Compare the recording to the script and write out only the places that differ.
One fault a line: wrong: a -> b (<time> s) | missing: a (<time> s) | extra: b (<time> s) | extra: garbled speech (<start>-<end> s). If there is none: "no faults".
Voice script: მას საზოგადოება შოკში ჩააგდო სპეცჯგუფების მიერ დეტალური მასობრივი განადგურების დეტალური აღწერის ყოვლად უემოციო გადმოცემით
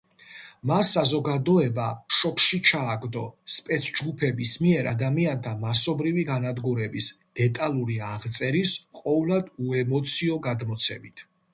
wrong: დეტალური -> ადამიანთა (4.9 s)